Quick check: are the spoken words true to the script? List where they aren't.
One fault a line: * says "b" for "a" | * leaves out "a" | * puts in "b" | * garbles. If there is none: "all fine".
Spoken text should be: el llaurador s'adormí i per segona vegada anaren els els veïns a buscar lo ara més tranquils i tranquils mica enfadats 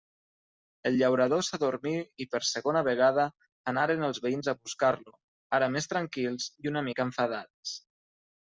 * leaves out "els"
* says "una" for "tranquils"